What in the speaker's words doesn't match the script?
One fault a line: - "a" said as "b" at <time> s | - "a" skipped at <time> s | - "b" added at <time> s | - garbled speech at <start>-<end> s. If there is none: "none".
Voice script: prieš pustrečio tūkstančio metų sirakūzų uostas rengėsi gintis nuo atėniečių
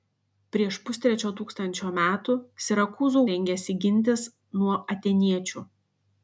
- "uostas" skipped at 3.2 s